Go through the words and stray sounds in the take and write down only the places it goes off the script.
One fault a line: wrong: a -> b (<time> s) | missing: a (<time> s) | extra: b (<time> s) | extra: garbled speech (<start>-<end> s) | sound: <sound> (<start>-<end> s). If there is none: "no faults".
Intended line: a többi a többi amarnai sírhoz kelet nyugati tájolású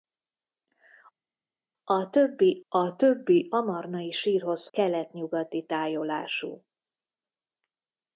no faults